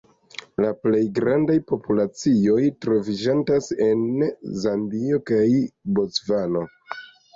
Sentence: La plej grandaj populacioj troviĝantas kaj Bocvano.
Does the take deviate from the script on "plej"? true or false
false